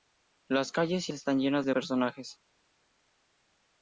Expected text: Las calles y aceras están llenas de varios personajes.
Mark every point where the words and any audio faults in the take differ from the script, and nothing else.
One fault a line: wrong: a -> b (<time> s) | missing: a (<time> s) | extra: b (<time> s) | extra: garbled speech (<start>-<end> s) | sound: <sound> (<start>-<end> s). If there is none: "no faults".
missing: aceras (1.1 s)
missing: varios (1.7 s)